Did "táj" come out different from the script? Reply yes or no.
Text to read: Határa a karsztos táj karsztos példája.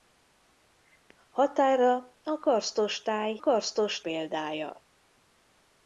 no